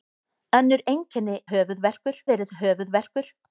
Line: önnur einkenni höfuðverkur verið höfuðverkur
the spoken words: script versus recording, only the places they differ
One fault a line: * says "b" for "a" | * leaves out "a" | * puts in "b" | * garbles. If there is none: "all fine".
all fine